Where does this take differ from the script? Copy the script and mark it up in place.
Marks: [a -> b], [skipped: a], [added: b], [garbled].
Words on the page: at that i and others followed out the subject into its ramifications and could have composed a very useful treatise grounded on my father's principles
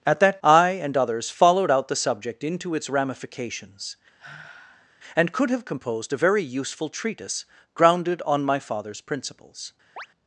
at that i and others followed out the subject into its ramifications and could have composed a very useful treatise grounded on my father's principles